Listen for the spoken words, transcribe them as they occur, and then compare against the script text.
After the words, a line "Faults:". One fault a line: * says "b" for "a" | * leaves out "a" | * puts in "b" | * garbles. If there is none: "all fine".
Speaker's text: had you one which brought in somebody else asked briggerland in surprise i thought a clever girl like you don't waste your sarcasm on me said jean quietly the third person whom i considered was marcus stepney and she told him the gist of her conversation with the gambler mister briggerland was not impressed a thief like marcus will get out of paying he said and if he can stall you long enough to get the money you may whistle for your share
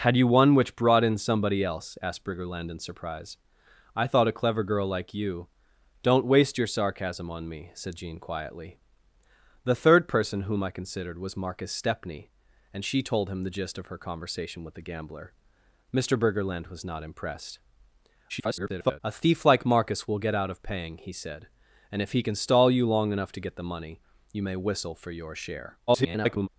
had you one which brought in somebody else asked briggerland in surprise i thought a clever girl like you don't waste your sarcasm on me said jean quietly the third person whom i considered was marcus stepney and she told him the gist of her conversation with the gambler mister briggerland was not impressed [garbled] a thief like marcus will get out of paying he said and if he can stall you long enough to get the money you may whistle for your share [garbled]
Faults:
* garbles
* garbles